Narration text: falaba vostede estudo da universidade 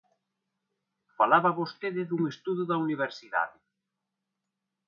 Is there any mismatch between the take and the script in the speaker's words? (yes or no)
yes